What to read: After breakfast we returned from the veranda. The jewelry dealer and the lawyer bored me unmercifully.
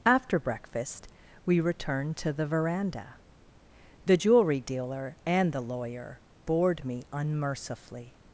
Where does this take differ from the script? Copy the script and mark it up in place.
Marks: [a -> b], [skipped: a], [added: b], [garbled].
After breakfast we returned [from -> to] the veranda. The jewelry dealer and the lawyer bored me unmercifully.